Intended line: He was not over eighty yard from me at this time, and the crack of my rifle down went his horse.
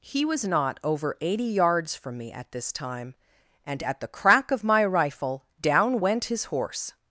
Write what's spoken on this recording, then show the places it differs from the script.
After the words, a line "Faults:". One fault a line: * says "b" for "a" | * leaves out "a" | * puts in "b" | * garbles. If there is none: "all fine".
He was not over eighty yards from me at this time, and at the crack of my rifle down went his horse.
Faults:
* says "yards" for "yard"
* puts in "at"